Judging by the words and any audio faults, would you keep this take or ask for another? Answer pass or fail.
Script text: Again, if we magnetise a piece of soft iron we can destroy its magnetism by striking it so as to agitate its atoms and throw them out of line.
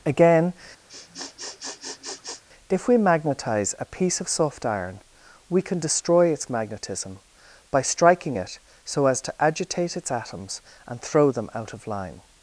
fail